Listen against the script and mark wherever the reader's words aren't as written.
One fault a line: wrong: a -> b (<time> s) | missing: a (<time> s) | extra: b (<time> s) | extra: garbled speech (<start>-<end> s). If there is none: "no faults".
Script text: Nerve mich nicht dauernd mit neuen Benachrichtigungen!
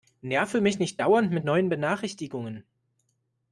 no faults